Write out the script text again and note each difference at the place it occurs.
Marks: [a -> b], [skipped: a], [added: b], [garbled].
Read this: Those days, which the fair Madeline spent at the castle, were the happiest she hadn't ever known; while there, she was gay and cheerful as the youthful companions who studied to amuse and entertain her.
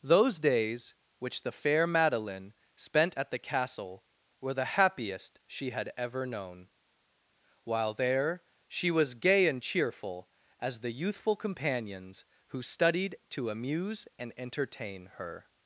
Those days, which the fair Madeline spent at the castle, were the happiest she [hadn't -> had] ever known; while there, she was gay and cheerful as the youthful companions who studied to amuse and entertain her.